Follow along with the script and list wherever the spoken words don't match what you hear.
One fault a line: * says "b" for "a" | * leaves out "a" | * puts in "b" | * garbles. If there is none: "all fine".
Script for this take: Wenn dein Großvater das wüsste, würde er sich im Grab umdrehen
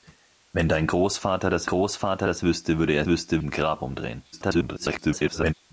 * puts in "Großvater das"
* says "wüsste" for "sich"
* garbles